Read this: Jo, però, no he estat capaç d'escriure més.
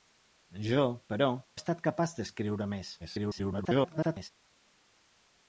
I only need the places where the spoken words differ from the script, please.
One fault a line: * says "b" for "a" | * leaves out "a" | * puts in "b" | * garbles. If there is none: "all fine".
* leaves out "no"
* garbles